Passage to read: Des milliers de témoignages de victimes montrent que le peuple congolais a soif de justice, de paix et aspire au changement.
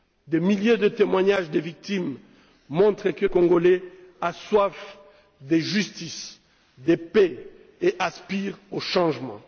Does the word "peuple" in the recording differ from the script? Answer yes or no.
yes